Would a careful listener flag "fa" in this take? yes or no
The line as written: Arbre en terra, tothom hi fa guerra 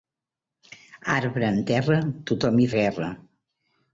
yes